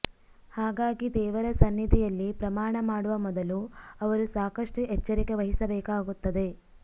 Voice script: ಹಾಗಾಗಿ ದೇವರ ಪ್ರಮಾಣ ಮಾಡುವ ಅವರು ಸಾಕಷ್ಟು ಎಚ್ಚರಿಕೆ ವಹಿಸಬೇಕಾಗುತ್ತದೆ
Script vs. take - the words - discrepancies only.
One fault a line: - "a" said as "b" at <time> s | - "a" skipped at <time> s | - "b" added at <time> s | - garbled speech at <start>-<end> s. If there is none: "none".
- "ಸನ್ನಿಧಿಯಲ್ಲಿ" added at 1.6 s
- "ಮೊದಲು" added at 3.2 s